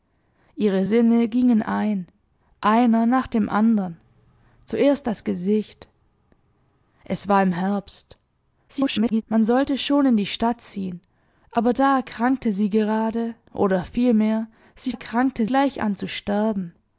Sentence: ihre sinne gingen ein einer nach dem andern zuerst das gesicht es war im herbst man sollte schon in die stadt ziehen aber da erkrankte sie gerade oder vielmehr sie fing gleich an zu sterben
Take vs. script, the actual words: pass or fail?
fail